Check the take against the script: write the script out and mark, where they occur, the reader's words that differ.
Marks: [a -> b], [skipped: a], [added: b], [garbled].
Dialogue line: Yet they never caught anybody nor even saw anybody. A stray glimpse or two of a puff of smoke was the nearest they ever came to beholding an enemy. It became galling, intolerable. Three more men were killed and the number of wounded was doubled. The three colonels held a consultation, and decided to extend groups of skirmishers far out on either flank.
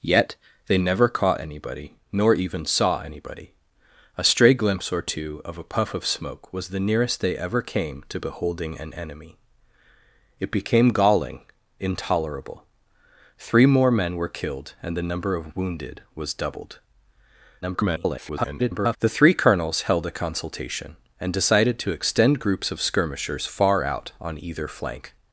Yet they never caught anybody nor even saw anybody. A stray glimpse or two of a puff of smoke was the nearest they ever came to beholding an enemy. It became galling, intolerable. Three more men were killed and the number of wounded was doubled. [garbled] The three colonels held a consultation, and decided to extend groups of skirmishers far out on either flank.